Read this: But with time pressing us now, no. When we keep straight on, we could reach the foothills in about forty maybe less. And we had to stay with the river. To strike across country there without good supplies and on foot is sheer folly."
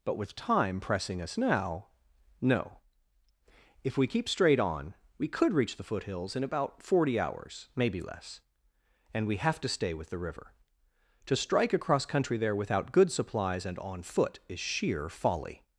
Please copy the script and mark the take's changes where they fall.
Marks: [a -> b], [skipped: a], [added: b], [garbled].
But with time pressing us now, no. [When -> If] we keep straight on, we could reach the foothills in about forty [added: hours] maybe less. And we [had -> have] to stay with the river. To strike across country there without good supplies and on foot is sheer folly."